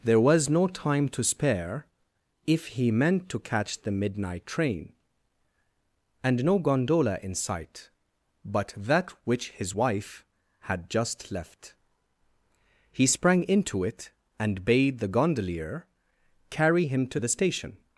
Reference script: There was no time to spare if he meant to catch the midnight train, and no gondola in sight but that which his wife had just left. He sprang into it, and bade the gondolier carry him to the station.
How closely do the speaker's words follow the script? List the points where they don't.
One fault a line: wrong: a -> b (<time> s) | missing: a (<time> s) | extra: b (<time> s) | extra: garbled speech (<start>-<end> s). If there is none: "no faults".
no faults